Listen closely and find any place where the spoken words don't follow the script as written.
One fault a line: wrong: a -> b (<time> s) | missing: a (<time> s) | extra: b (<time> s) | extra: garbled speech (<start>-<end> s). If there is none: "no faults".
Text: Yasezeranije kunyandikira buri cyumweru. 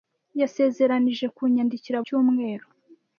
missing: buri (2.0 s)